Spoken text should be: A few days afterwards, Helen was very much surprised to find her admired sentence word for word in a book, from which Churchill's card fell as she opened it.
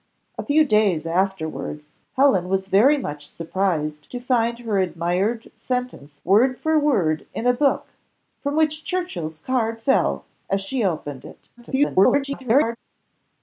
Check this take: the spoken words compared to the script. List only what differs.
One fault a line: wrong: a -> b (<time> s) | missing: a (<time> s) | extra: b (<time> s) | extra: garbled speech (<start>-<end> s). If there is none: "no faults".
extra: garbled speech (11.6-12.8 s)